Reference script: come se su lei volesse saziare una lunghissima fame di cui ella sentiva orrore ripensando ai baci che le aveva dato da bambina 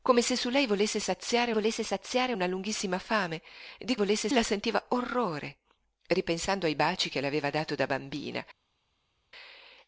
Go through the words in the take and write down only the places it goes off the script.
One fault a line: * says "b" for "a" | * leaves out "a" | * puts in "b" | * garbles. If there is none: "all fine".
* puts in "volesse saziare"
* says "volesse" for "cui"